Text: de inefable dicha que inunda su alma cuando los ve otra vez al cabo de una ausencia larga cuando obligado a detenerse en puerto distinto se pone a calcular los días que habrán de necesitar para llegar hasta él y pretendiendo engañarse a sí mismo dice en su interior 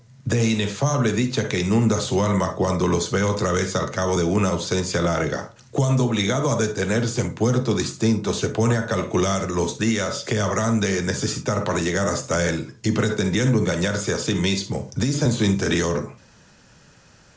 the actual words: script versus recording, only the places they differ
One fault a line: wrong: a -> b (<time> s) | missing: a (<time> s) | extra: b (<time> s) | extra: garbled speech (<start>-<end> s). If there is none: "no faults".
no faults